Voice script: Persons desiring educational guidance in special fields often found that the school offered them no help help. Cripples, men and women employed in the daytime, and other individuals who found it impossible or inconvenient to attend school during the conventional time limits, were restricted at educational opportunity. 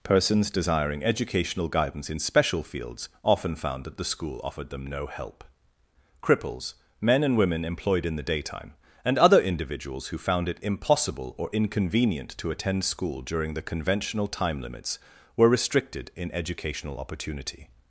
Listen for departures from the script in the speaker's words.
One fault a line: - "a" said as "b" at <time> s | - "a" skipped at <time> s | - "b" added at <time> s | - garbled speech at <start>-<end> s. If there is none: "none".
- "help" skipped at 5.4 s
- "at" said as "in" at 16.1 s